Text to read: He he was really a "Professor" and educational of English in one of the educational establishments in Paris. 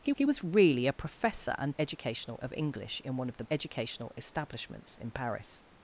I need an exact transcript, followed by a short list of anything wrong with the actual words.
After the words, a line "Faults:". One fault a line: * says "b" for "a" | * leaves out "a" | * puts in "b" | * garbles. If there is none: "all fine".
He he was really a "Professor" and educational of English in one of the educational establishments in Paris.
Faults:
all fine